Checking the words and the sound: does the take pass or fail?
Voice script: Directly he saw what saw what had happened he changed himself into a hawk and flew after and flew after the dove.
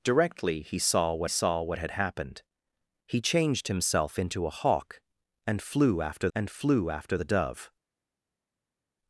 pass